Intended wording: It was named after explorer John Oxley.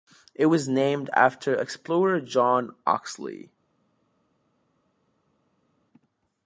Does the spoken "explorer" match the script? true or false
true